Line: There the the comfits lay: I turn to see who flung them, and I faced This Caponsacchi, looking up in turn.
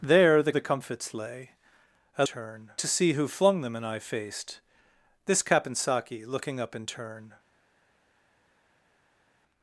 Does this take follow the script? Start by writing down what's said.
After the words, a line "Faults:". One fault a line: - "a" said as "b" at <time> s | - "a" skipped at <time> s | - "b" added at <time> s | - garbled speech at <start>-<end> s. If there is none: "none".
There the the comfits lay: I turn to see who flung them, and I faced This Caponsacchi, looking up in turn.
Faults:
none